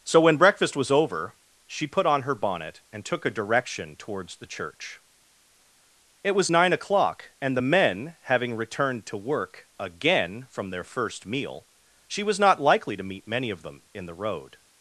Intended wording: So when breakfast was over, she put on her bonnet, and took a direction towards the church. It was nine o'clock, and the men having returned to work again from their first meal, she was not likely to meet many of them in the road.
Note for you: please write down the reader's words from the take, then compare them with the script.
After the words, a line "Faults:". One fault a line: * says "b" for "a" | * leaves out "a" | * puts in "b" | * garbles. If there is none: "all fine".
So when breakfast was over, she put on her bonnet, and took a direction towards the church. It was nine o'clock, and the men having returned to work again from their first meal, she was not likely to meet many of them in the road.
Faults:
all fine